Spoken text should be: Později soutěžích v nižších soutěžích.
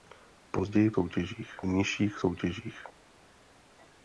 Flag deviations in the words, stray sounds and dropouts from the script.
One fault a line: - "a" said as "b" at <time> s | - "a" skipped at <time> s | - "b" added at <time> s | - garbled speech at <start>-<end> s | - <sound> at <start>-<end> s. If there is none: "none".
none